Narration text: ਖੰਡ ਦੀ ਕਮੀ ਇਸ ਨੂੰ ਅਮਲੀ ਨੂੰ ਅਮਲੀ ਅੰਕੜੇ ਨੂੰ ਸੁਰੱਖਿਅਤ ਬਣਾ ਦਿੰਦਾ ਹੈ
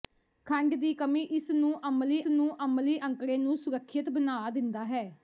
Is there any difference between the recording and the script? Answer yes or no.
no